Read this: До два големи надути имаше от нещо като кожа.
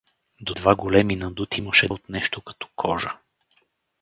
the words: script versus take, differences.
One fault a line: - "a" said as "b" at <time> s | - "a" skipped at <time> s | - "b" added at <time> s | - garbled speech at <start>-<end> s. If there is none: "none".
none